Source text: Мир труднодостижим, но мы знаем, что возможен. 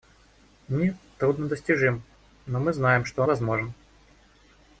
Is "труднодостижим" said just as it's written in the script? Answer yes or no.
yes